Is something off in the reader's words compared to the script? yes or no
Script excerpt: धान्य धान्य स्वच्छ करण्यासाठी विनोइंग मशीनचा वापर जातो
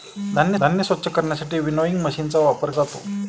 no